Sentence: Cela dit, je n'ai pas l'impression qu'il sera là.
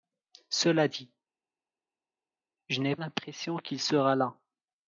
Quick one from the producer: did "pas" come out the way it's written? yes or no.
no